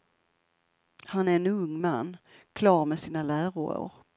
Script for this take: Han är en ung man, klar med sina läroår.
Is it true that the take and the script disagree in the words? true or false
false